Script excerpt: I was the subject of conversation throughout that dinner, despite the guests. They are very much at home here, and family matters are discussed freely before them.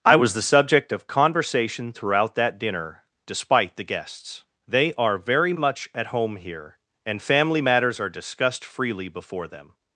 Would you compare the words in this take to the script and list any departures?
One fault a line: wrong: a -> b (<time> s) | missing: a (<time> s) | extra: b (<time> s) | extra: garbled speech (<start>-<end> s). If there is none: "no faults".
no faults